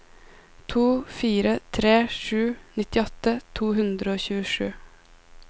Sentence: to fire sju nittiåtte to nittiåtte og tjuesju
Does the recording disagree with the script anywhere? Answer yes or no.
yes